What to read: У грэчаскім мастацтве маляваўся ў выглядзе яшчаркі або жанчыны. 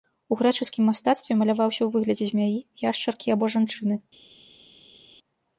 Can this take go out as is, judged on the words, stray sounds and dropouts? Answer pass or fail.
fail